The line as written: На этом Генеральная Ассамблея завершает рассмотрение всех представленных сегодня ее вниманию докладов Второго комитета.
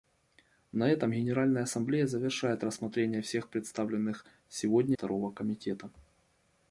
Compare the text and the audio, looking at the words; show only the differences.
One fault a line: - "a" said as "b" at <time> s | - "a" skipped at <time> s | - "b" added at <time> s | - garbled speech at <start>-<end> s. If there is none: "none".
- "ее вниманию докладов" skipped at 5.0 s